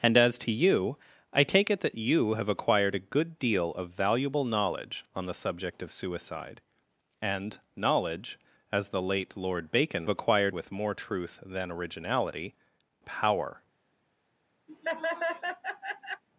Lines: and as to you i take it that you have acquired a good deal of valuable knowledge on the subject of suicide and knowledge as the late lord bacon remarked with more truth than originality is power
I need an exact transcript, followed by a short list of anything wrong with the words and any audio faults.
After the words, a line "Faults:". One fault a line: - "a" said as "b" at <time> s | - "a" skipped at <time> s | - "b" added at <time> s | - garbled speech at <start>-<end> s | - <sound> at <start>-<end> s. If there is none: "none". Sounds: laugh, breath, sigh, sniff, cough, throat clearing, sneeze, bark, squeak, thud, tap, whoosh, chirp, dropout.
and as to you i take it that you have acquired a good deal of valuable knowledge on the subject of suicide and knowledge as the late lord bacon acquired with more truth than originality power
Faults:
- "remarked" said as "acquired" at 10.1 s
- "is" skipped at 12.5 s
- laugh at 14.7-16.2 s